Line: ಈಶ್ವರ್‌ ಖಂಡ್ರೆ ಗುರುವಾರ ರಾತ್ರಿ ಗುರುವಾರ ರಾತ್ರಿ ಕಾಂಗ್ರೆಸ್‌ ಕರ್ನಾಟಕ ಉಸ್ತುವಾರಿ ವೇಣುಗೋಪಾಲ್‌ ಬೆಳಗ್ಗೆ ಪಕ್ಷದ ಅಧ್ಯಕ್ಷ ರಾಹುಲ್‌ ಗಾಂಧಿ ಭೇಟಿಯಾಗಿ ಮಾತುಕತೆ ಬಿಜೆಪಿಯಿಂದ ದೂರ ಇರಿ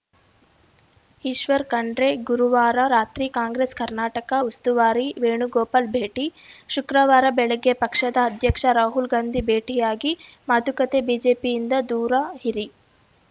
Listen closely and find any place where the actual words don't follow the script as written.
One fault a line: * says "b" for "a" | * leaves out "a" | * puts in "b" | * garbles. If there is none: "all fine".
* leaves out "ಗುರುವಾರ ರಾತ್ರಿ"
* puts in "ಭೇಟಿ ಶುಕ್ರವಾರ"